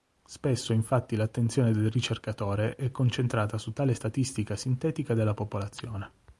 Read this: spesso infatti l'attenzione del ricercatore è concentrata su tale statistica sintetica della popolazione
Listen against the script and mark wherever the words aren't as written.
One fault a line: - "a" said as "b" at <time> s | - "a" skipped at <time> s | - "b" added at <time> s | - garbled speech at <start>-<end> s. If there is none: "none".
none